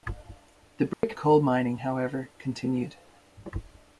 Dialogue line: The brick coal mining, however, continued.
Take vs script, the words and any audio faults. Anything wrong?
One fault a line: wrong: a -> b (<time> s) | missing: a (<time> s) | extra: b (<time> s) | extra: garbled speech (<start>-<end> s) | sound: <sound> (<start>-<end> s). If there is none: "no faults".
sound: dropout (0.9-1.0 s)